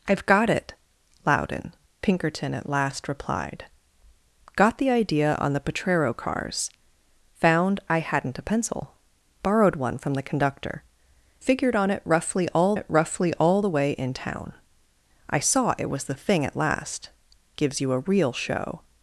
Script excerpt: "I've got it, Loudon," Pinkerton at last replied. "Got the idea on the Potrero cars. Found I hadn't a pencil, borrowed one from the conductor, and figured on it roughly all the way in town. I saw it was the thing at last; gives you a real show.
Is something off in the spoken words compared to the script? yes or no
yes